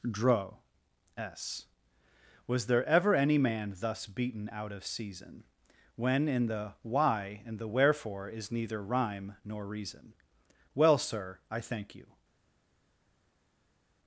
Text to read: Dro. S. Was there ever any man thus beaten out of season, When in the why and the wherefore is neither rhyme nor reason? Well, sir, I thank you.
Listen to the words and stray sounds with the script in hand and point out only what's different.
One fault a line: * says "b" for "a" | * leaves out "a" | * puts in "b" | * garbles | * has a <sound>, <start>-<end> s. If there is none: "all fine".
all fine